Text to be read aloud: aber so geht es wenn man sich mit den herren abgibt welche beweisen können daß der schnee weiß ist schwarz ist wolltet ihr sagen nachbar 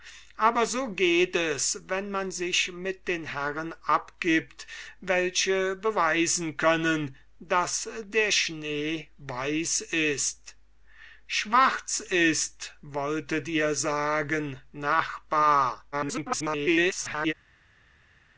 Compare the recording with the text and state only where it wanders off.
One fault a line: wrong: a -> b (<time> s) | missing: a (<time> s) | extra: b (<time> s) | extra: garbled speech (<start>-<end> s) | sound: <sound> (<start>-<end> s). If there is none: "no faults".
extra: garbled speech (15.9-17.3 s)